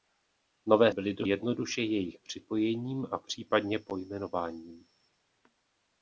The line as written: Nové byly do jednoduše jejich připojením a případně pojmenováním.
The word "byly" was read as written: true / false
true